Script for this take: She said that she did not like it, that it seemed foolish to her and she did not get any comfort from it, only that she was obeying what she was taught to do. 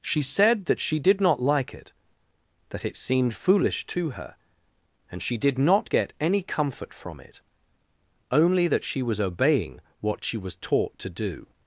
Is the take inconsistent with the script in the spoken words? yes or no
no